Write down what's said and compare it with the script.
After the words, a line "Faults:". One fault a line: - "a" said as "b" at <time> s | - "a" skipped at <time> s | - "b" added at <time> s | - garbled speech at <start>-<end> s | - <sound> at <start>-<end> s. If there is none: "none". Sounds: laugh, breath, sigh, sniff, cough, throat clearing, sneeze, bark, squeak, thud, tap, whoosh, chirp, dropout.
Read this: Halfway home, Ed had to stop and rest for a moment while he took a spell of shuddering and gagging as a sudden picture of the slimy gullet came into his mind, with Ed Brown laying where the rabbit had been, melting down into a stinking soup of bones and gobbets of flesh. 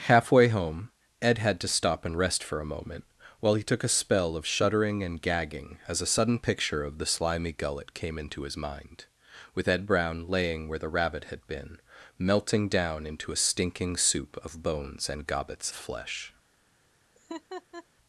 Halfway home, Ed had to stop and rest for a moment while he took a spell of shuddering and gagging as a sudden picture of the slimy gullet came into his mind, with Ed Brown laying where the rabbit had been, melting down into a stinking soup of bones and gobbets flesh.
Faults:
- "of" skipped at 15.7 s
- laugh at 17.1-17.9 s